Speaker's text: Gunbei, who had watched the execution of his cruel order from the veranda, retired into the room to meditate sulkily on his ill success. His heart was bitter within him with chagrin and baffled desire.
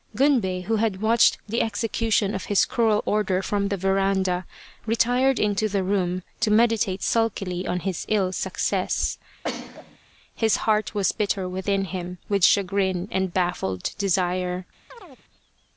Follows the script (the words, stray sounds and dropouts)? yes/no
no